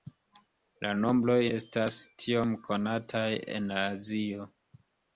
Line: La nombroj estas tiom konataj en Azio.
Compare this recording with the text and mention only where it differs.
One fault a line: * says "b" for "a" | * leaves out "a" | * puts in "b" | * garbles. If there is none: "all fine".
all fine